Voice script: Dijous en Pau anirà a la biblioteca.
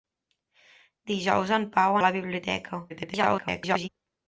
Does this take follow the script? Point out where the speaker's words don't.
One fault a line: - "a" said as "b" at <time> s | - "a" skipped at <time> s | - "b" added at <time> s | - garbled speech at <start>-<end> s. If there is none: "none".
- "anirà" skipped at 2.0 s
- garbled speech at 2.9-3.9 s